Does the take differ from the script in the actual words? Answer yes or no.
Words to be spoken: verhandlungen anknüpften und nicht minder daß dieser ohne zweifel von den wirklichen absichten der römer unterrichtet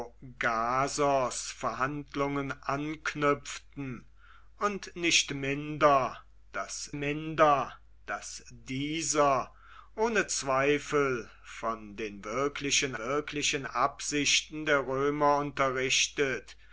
yes